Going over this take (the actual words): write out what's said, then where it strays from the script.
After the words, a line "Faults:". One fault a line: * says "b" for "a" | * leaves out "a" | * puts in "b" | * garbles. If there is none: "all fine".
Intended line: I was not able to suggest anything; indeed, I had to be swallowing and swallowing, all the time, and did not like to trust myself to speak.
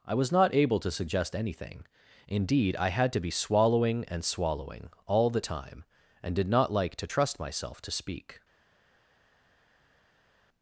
I was not able to suggest anything; indeed, I had to be swallowing and swallowing, all the time, and did not like to trust myself to speak.
Faults:
all fine